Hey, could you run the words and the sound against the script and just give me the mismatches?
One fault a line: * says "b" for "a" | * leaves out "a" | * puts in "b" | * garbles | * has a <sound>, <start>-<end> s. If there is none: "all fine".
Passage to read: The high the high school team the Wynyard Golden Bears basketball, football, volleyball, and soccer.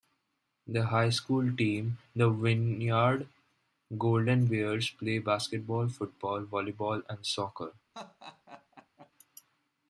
* leaves out "the high"
* puts in "play"
* has a laugh, 7.9-9.1 s